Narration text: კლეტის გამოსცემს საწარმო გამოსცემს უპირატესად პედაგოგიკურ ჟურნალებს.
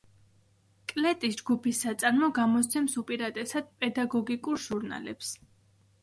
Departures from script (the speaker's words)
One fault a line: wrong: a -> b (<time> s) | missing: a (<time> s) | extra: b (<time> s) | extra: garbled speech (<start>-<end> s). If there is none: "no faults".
wrong: გამოსცემს -> ჯგუფის (1.4 s)